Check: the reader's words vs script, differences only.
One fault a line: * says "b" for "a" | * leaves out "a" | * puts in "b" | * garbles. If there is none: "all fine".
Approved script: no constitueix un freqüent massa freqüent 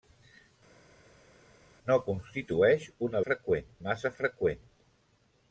all fine